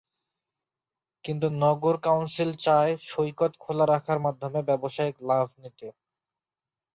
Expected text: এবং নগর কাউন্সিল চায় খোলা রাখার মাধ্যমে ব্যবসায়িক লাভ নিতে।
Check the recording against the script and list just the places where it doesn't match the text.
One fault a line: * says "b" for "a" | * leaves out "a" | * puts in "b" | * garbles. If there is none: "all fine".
* says "কিন্তু" for "এবং"
* puts in "সৈকত"